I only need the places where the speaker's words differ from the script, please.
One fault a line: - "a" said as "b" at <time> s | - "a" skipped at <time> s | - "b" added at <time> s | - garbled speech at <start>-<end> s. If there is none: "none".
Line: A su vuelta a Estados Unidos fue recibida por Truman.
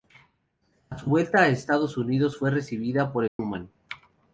none